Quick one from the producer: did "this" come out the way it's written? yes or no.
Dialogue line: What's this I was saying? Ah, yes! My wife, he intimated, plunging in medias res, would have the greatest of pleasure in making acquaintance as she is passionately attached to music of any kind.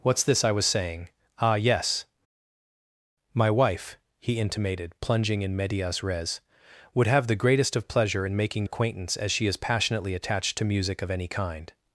yes